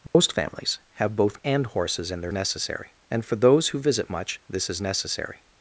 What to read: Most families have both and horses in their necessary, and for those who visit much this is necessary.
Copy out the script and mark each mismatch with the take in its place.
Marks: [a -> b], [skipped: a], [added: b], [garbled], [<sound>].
Most [dropout] families have both and horses in their necessary, and for those who visit much this is necessary.